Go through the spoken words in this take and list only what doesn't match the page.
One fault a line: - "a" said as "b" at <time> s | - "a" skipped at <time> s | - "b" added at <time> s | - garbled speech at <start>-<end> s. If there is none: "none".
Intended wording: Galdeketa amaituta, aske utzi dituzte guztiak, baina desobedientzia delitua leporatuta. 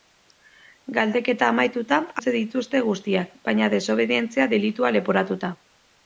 - "aske" skipped at 2.0 s